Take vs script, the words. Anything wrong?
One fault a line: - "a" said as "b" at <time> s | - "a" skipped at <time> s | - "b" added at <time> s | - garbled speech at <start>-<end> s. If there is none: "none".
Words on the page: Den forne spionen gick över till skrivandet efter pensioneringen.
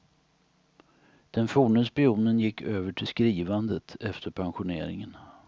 none